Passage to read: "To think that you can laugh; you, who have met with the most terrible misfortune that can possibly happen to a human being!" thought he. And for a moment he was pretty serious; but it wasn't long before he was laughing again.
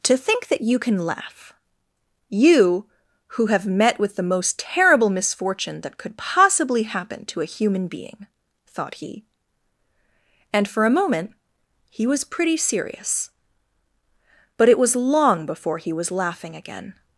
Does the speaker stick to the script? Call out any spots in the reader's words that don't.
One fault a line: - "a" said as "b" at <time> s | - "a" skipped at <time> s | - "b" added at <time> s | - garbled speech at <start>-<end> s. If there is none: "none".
- "can" said as "could" at 6.0 s
- "wasn't" said as "was" at 14.8 s